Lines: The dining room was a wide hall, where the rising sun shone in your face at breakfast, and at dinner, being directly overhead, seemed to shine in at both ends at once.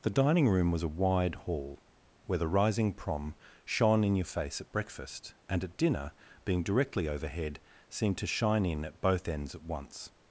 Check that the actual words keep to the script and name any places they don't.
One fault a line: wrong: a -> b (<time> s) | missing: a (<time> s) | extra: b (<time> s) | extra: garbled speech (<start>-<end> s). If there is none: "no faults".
wrong: sun -> prom (2.9 s)